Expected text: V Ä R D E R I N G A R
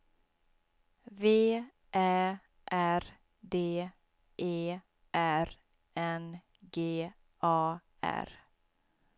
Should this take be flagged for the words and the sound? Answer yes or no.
yes